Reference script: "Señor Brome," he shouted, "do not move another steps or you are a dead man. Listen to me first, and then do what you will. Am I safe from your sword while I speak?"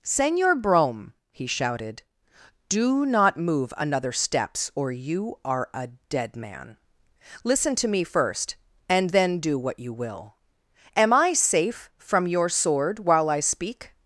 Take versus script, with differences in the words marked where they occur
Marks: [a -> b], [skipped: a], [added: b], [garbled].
"Señor Brome," he shouted, "do not move another steps or you are a dead man. Listen to me first, and then do what you will. Am I safe from your sword while I speak?"